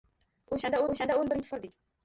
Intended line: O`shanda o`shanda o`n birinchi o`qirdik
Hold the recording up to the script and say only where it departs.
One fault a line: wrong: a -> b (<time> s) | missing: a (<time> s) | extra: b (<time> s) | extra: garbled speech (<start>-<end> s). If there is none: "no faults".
no faults